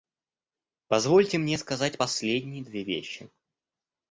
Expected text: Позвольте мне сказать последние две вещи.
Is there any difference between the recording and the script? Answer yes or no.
no